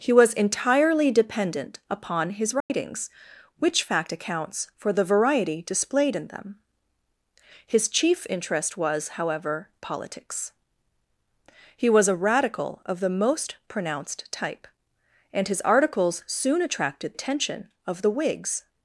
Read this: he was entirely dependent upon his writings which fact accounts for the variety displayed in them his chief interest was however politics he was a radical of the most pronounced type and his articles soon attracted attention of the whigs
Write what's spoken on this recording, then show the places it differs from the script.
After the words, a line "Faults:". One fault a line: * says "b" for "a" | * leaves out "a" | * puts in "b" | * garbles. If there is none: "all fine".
he was entirely dependent upon his writings which fact accounts for the variety displayed in them his chief interest was however politics he was a radical of the most pronounced type and his articles soon attracted attention of the whigs
Faults:
all fine